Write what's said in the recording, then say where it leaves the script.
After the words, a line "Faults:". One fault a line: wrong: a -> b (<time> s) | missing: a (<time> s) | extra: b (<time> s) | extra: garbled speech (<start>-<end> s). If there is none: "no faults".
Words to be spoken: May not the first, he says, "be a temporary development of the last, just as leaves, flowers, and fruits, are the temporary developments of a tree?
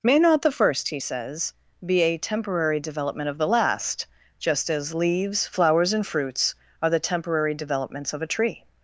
May not the first, he says, "be a temporary development of the last, just as leaves, flowers, and fruits, are the temporary developments of a tree?
Faults:
no faults